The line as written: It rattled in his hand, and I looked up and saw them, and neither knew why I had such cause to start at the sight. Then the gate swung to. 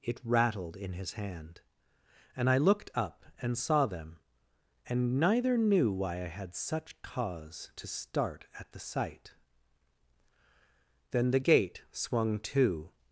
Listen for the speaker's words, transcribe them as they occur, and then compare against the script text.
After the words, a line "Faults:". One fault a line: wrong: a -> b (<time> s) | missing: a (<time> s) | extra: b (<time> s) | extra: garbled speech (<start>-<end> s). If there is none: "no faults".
It rattled in his hand, and I looked up and saw them, and neither knew why I had such cause to start at the sight. Then the gate swung to.
Faults:
no faults